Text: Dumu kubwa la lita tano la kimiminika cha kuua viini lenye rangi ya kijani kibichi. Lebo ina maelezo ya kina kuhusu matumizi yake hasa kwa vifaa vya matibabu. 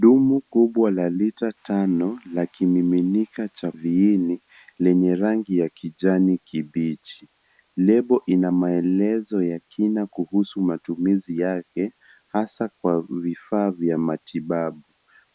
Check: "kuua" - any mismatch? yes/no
yes